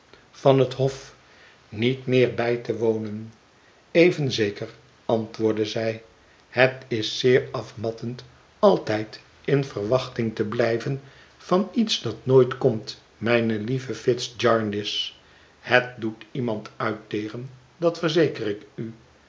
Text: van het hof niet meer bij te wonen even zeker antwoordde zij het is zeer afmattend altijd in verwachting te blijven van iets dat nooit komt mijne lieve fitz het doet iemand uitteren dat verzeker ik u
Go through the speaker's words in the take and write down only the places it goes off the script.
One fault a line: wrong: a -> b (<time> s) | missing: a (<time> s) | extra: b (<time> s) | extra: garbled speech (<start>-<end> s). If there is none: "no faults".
extra: jarndyce (14.4 s)